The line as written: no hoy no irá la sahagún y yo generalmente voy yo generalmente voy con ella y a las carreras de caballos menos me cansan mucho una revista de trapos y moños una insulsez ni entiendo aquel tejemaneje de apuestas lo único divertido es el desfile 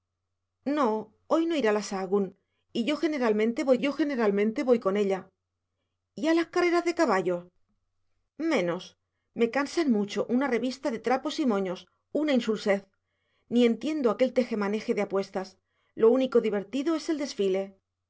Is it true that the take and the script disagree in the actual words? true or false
false